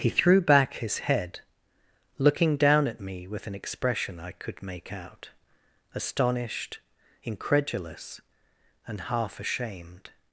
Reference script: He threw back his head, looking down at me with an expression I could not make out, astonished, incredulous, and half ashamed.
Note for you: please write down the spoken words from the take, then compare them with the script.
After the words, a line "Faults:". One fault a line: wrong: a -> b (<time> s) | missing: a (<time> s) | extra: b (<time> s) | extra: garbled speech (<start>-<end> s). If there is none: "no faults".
He threw back his head, looking down at me with an expression I could make out, astonished, incredulous, and half ashamed.
Faults:
missing: not (4.6 s)